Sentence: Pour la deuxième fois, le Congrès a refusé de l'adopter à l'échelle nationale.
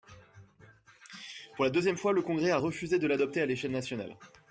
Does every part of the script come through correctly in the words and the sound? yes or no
yes